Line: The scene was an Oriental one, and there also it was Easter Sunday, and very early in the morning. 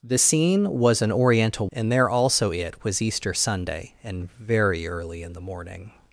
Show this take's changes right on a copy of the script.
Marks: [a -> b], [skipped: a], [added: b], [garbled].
The scene was an Oriental [skipped: one,] and there also it was Easter Sunday, and very early in the morning.